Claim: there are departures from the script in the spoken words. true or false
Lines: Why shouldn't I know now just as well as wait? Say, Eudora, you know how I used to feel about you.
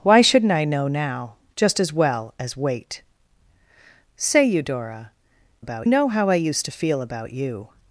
true